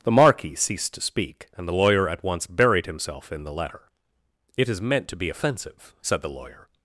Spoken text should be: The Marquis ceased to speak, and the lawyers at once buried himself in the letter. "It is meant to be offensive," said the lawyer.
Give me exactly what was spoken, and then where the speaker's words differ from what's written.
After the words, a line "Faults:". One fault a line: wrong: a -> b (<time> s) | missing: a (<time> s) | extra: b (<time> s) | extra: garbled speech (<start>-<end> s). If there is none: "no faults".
The Marquis ceased to speak, and the lawyer at once buried himself in the letter. "It is meant to be offensive," said the lawyer.
Faults:
wrong: lawyers -> lawyer (1.7 s)